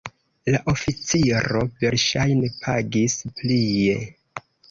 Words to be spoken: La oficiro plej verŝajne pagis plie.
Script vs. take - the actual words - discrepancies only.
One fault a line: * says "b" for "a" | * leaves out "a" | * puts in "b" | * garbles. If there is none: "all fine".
* leaves out "plej"